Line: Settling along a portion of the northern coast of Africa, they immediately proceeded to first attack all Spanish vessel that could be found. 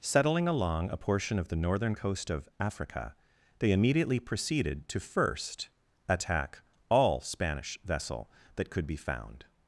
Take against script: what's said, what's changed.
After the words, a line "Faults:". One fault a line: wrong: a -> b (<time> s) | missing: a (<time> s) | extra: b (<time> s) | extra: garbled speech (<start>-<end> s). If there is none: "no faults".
Settling along a portion of the northern coast of Africa, they immediately proceeded to first attack all Spanish vessel that could be found.
Faults:
no faults